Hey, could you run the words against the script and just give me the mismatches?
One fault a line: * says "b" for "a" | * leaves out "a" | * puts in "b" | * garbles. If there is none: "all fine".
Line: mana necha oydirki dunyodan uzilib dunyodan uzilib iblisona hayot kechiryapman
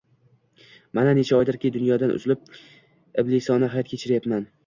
* leaves out "dunyodan uzilib"